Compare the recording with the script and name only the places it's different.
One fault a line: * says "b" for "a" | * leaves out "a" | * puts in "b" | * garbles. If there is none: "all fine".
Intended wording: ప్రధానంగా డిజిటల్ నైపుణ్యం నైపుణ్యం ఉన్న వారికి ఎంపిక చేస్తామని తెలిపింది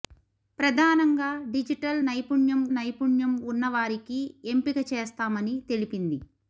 all fine